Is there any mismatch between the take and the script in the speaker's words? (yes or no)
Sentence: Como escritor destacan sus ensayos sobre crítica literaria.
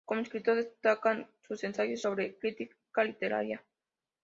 no